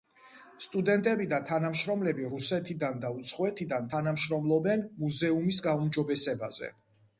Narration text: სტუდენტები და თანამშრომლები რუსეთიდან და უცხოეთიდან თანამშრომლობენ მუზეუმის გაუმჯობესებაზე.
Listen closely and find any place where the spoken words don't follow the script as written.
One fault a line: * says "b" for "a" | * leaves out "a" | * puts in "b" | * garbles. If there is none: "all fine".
all fine